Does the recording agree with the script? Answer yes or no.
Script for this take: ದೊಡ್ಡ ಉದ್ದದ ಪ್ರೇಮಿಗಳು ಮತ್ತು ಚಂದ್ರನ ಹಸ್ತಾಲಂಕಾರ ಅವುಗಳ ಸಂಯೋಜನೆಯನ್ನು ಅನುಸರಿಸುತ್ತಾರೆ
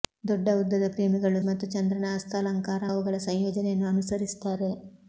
yes